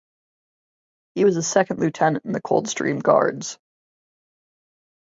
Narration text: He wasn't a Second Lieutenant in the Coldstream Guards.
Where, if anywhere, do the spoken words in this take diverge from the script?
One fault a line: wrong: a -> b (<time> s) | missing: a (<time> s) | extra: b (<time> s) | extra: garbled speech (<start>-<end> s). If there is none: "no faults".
wrong: wasn't -> was (1.2 s)